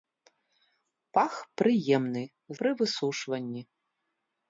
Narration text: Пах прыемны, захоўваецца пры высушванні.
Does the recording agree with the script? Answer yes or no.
no